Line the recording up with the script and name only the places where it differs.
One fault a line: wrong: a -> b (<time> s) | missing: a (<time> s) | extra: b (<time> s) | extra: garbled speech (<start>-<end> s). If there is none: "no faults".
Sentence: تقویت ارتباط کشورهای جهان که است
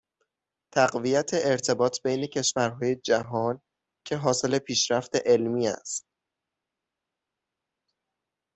extra: بین (2.0 s)
extra: حاصل پیشرفت علمی (4.2 s)